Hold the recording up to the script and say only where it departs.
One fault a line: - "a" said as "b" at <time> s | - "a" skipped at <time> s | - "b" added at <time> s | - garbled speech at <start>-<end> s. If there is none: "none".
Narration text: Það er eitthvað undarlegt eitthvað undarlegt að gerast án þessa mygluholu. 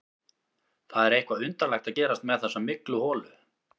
- "eitthvað undarlegt" skipped at 1.9 s
- "án" said as "með" at 2.3 s